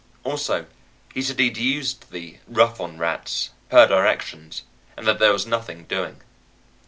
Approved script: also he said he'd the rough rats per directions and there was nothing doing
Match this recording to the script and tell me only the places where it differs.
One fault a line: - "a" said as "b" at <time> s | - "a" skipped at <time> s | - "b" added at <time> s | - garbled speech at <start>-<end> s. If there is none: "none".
- "used" added at 1.6 s
- "on" added at 2.8 s
- "that" added at 5.0 s